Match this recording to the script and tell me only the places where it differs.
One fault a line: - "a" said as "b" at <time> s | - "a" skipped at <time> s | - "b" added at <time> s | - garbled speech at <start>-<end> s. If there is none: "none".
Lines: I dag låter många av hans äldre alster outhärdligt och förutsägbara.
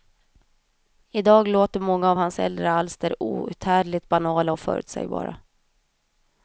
- "banala" added at 4.1 s